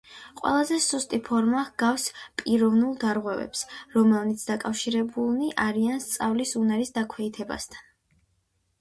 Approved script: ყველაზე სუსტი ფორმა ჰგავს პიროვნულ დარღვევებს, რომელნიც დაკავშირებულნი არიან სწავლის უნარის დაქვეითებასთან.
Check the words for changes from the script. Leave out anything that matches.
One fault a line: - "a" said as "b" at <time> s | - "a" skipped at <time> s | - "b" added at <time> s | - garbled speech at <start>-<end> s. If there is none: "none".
none